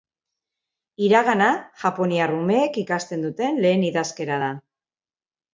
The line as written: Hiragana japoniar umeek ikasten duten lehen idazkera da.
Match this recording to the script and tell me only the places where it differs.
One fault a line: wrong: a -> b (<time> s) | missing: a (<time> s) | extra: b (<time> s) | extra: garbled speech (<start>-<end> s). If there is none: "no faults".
no faults